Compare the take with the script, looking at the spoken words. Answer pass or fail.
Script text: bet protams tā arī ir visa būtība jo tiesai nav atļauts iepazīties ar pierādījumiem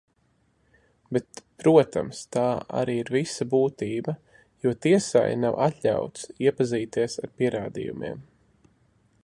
pass